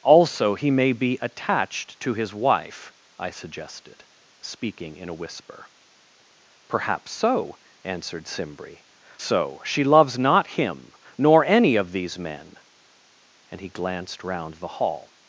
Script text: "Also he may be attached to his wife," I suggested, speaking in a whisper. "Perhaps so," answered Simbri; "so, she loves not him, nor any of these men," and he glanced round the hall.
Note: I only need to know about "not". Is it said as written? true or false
true